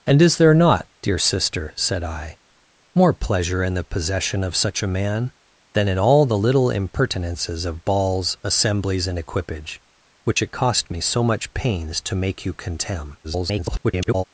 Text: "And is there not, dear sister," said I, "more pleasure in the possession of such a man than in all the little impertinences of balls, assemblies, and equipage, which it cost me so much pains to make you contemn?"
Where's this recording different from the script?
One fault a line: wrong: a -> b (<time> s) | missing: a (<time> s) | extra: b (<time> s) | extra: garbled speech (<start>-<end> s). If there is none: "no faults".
extra: garbled speech (13.2-14.2 s)